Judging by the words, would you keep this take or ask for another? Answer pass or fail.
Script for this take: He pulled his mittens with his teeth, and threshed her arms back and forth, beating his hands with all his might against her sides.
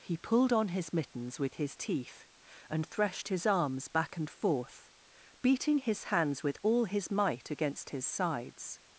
fail